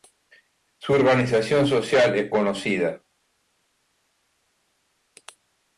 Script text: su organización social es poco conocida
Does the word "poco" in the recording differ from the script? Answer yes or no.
yes